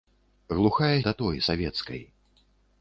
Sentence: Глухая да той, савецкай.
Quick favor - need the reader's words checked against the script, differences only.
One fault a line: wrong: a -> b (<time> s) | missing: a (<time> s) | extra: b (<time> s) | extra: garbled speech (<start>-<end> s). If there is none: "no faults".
no faults